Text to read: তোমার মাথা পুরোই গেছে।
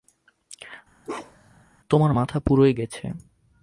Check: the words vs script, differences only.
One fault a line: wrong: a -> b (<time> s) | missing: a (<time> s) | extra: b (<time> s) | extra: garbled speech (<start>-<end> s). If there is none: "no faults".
no faults